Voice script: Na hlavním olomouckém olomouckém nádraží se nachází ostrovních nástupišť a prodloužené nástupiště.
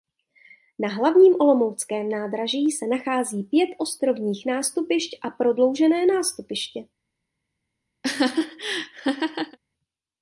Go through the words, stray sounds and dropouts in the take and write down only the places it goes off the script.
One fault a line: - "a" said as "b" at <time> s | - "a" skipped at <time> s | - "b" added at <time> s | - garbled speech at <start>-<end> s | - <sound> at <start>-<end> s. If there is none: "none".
- "olomouckém" skipped at 2.1 s
- "pět" added at 3.4 s
- laugh at 8.0-9.6 s